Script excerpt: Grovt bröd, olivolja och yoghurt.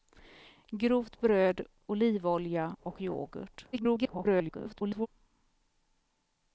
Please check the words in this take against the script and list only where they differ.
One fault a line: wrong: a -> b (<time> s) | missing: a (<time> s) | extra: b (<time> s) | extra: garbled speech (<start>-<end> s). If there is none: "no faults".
extra: garbled speech (3.7-5.1 s)